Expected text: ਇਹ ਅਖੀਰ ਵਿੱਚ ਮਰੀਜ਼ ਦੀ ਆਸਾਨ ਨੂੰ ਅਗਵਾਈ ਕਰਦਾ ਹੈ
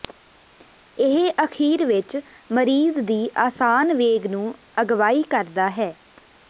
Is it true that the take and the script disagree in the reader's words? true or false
true